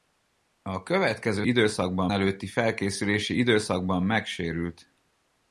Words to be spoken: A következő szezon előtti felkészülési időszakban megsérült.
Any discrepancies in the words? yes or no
yes